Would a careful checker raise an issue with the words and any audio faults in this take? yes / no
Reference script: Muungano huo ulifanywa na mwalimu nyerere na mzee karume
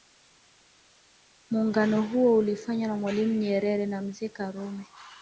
no